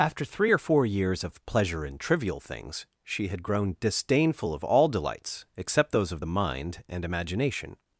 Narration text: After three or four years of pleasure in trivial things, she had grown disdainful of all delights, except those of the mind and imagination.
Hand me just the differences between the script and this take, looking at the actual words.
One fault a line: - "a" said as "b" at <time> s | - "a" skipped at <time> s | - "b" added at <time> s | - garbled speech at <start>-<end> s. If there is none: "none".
none